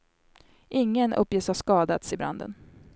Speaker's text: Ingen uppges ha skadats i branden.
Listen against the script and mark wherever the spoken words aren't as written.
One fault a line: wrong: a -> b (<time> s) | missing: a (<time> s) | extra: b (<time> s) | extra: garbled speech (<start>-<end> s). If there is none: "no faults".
no faults